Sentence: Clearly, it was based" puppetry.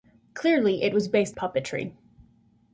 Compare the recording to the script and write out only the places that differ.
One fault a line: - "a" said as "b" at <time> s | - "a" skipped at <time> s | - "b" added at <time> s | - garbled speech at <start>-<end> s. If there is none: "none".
none